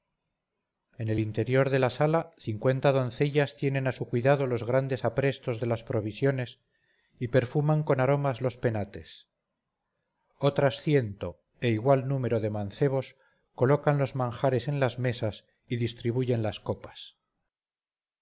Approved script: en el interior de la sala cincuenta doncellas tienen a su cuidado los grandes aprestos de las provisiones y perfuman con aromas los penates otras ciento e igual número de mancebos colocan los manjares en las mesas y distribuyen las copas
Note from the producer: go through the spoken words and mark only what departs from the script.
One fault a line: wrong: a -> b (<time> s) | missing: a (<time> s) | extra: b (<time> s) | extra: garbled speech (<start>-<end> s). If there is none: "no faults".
no faults